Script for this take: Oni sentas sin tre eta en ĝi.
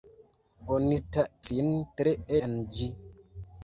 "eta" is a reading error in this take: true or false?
true